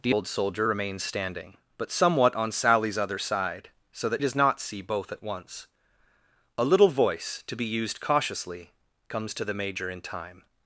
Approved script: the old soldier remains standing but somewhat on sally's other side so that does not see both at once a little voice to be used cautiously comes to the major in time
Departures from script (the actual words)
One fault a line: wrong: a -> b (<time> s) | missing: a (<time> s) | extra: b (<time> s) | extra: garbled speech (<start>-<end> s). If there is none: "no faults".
no faults